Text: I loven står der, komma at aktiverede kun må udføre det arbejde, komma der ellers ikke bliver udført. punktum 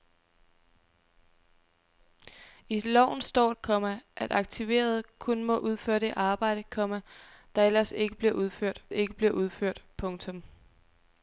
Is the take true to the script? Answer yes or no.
no